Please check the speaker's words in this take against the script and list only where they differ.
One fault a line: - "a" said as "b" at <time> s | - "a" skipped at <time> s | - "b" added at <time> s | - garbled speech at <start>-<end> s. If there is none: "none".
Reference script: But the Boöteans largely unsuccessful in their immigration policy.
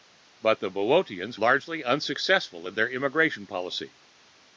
none